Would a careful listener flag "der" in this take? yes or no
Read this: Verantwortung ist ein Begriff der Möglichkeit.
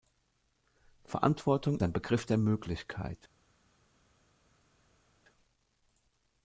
no